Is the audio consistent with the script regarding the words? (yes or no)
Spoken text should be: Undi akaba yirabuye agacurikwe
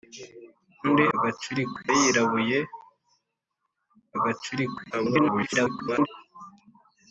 no